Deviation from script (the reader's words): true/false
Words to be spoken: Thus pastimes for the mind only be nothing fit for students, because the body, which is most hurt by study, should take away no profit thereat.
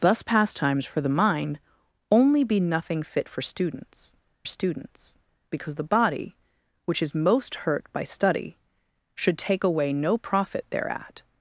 true